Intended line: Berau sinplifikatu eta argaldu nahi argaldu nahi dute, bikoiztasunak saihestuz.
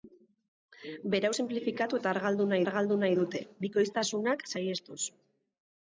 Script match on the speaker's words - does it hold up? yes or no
yes